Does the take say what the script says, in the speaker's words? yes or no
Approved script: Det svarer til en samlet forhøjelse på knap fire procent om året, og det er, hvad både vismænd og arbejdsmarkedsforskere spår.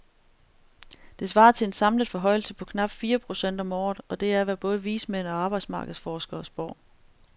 yes